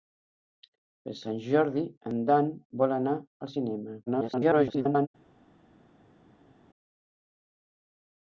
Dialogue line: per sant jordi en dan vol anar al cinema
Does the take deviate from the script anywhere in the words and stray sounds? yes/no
yes